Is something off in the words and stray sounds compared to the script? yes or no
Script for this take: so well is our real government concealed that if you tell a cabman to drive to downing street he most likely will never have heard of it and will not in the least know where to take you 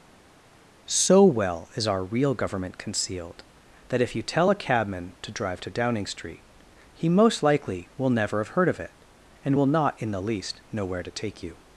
no